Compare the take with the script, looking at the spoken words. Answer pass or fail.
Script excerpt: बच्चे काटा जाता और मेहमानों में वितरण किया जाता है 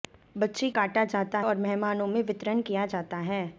pass